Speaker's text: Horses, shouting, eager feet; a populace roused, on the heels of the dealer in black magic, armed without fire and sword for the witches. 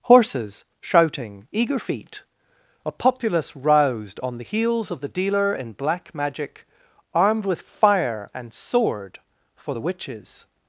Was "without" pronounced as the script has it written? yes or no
no